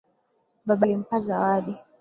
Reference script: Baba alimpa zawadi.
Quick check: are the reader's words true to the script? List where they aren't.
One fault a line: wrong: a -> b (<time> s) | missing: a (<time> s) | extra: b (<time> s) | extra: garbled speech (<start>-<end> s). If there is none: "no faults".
no faults